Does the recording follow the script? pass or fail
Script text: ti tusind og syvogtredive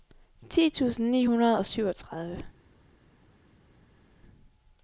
fail